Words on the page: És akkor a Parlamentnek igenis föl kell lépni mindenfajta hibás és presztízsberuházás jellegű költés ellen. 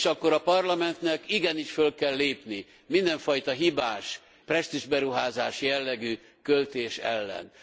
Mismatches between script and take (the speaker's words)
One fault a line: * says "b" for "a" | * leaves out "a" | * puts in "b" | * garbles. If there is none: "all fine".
* leaves out "és"